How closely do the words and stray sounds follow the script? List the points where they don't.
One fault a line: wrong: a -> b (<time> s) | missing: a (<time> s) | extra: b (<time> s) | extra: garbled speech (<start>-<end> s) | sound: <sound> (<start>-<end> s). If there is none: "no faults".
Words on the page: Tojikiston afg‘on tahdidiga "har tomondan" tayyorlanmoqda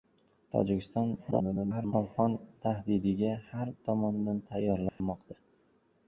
extra: garbled speech (1.3-1.9 s)
sound: dropout (4.9-5.0 s)